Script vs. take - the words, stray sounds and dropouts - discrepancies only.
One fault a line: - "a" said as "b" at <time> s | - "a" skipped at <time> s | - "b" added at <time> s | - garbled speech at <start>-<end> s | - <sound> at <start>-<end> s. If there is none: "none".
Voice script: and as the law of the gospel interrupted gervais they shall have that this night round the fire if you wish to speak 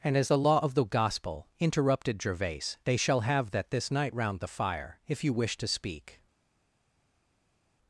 none